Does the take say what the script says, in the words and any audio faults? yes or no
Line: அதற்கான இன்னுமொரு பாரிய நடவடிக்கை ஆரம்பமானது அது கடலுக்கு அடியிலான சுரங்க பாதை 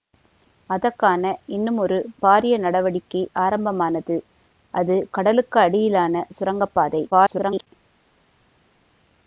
no